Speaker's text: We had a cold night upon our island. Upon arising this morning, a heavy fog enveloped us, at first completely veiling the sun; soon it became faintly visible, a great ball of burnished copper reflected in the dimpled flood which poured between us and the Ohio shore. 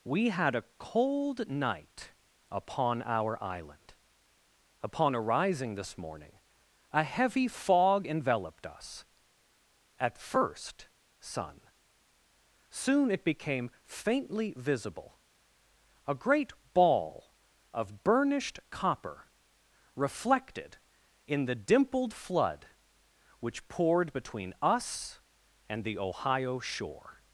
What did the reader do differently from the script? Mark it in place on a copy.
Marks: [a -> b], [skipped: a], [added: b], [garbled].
We had a cold night upon our island. Upon arising this morning, a heavy fog enveloped us, at first [skipped: completely veiling the] sun; soon it became faintly visible, a great ball of burnished copper reflected in the dimpled flood which poured between us and the Ohio shore.